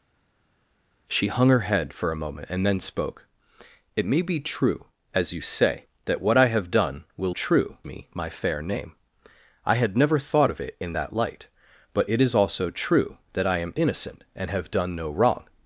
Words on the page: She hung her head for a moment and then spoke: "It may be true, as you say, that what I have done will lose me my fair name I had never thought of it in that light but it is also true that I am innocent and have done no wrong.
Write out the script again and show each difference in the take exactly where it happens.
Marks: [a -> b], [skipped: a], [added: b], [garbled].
She hung her head for a moment and then spoke: "It may be true, as you say, that what I have done will [lose -> true] me my fair name I had never thought of it in that light but it is also true that I am innocent and have done no wrong.